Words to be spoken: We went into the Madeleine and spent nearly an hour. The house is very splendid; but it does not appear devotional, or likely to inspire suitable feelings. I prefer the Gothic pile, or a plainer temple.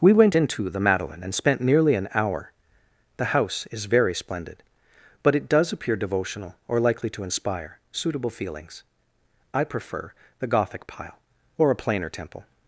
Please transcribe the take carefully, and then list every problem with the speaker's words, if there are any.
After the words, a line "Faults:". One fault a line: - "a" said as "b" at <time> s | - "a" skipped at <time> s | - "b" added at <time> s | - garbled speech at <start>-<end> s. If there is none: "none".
We went into the Madeleine and spent nearly an hour. The house is very splendid; but it does appear devotional, or likely to inspire suitable feelings. I prefer the Gothic pile, or a plainer temple.
Faults:
- "not" skipped at 5.7 s